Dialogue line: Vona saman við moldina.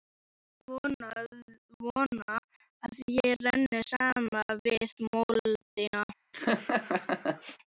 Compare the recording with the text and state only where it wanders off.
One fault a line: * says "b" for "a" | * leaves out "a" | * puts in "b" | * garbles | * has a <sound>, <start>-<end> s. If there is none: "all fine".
* puts in "að ég renni"
* has a laugh, 6.3-7.6 s